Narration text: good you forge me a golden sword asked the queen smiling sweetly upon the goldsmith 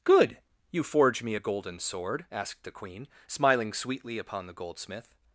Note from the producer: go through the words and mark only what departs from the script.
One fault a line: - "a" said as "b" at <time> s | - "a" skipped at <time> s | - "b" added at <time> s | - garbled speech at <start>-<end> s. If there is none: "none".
none